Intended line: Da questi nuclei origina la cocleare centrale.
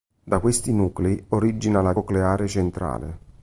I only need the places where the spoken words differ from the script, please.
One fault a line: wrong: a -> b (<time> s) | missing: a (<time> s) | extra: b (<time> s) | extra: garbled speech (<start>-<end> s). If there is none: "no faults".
no faults